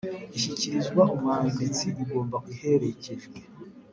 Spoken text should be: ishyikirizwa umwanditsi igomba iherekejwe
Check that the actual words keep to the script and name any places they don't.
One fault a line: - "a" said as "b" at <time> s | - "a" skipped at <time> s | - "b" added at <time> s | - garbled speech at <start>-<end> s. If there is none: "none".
none